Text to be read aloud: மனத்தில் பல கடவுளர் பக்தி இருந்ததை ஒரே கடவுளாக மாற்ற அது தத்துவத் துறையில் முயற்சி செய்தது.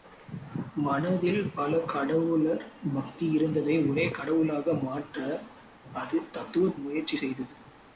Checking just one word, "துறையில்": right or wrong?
wrong